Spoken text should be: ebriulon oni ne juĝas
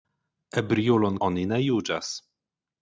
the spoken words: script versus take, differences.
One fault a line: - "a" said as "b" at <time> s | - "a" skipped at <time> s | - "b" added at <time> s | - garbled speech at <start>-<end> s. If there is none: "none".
none